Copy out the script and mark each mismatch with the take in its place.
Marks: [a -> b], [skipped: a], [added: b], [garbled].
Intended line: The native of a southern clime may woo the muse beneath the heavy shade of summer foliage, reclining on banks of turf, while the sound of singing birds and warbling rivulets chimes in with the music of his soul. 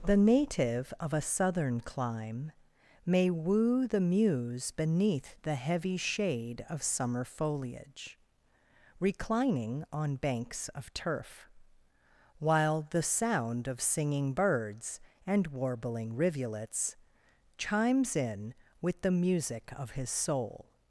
The native of a southern clime may woo the muse beneath the heavy shade of summer foliage, reclining on banks of turf, while the sound of singing birds and warbling rivulets chimes in with the music of his soul.